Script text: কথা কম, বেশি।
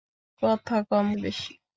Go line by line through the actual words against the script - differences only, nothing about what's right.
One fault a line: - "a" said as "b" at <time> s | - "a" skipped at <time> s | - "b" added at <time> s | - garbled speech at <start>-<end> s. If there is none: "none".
none